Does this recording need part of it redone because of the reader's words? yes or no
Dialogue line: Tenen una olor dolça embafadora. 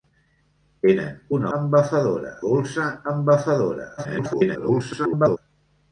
yes